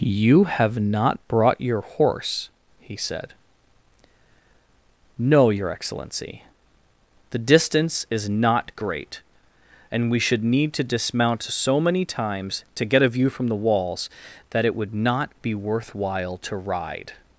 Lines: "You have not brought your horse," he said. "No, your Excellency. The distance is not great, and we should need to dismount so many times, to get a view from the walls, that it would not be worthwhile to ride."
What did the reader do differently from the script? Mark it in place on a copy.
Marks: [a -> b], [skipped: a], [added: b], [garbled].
"You have not brought your horse," he said. "No, your Excellency. The distance is not great, and we should need to dismount so many times, to get a view from the walls, that it would not be worthwhile to ride."